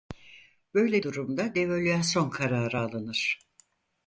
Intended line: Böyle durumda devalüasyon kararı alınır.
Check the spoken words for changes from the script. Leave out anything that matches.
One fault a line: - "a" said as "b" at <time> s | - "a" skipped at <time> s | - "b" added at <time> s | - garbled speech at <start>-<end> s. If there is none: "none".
none